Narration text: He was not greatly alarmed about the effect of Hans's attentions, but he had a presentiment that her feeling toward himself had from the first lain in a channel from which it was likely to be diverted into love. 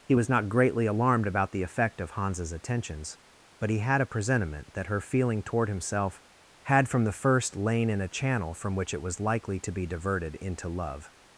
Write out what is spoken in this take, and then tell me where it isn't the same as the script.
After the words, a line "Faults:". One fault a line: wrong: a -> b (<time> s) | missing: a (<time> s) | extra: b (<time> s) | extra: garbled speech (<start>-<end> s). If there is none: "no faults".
He was not greatly alarmed about the effect of Hans's attentions, but he had a presentiment that her feeling toward himself had from the first lain in a channel from which it was likely to be diverted into love.
Faults:
no faults